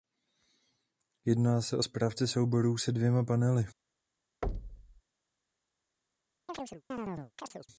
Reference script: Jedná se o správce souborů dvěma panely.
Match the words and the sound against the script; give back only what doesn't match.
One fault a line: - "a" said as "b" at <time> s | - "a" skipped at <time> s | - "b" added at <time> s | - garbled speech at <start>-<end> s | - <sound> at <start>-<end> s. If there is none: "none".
- "se" added at 2.8 s
- thud at 4.4-5.0 s
- chirp at 6.5-7.7 s